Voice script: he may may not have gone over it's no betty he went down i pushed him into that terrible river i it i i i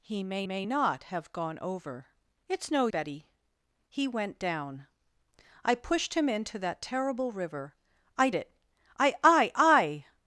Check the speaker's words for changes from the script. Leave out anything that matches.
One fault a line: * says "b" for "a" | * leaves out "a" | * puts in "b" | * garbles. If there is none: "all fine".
all fine